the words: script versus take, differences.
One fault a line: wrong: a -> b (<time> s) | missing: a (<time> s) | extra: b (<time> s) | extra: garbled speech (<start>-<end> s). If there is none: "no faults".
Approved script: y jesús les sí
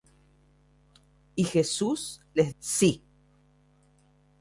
no faults